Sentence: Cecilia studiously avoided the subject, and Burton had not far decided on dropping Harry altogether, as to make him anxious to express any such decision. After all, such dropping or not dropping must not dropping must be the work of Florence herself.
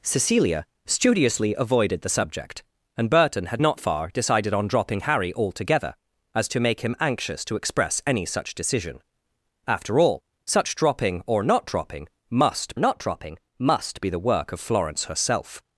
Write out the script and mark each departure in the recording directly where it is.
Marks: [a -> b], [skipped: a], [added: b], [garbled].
Cecilia studiously avoided the subject, and Burton had not far decided on dropping Harry altogether, as to make him anxious to express any such decision. After all, such dropping or not dropping must not dropping must be the work of Florence herself.